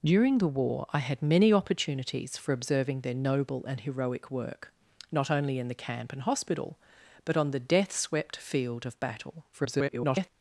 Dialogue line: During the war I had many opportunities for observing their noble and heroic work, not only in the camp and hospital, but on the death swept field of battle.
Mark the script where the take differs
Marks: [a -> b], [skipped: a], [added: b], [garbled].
During the war I had many opportunities for observing their noble and heroic work, not only in the camp and hospital, but on the death swept field of battle. [garbled]